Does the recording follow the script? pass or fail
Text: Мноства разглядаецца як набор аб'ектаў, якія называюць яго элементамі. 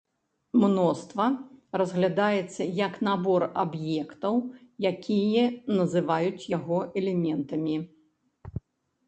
pass